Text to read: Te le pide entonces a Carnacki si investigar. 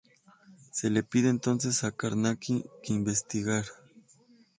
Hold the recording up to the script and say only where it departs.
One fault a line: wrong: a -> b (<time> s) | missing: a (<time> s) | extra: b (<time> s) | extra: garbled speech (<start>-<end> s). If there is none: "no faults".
wrong: Te -> Se (0.7 s)
wrong: si -> que (2.8 s)